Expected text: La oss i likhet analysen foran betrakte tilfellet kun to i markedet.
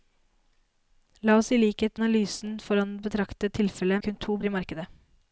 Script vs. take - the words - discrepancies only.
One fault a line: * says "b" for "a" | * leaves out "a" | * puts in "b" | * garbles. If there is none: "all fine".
all fine